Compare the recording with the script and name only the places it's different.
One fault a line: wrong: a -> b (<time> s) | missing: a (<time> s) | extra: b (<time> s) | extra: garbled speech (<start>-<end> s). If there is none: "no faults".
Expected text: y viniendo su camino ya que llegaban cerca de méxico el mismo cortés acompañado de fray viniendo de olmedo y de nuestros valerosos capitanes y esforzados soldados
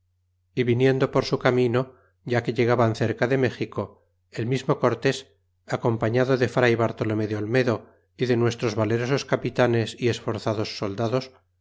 extra: por (1.1 s)
wrong: viniendo -> bartolome (6.8 s)